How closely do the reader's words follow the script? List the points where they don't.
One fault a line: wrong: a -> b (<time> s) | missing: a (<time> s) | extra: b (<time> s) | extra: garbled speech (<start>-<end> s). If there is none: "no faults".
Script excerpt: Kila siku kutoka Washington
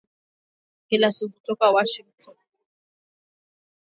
no faults